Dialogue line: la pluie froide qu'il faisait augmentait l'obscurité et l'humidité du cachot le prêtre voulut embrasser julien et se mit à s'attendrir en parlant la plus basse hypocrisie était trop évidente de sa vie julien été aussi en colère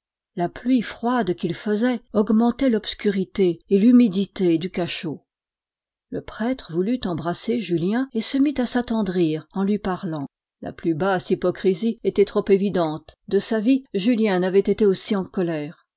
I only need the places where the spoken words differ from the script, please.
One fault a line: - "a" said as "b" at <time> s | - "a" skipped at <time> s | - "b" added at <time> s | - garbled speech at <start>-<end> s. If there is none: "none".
- "lui" added at 9.6 s
- "n'avait" added at 14.4 s